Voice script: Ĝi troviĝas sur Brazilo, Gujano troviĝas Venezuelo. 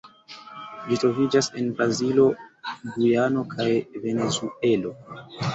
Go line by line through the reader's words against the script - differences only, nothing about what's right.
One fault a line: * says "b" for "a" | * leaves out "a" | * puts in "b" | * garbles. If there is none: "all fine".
* says "en" for "sur"
* says "kaj" for "troviĝas"